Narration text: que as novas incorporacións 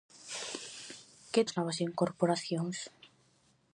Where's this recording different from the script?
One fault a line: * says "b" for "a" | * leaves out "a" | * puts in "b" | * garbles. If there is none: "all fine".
all fine